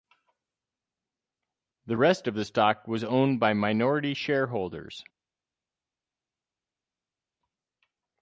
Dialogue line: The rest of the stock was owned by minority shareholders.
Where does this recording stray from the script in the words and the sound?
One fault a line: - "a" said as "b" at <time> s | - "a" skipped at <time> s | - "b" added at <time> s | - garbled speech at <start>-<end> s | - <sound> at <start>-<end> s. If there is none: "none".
none